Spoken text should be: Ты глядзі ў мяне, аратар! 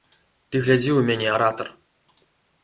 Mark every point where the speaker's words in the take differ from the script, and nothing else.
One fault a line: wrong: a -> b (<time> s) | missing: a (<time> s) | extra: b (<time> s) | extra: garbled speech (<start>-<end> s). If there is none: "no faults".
no faults